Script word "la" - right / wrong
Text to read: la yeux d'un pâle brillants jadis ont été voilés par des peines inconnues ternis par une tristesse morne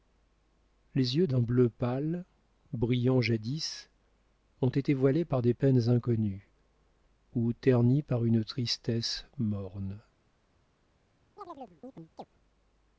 wrong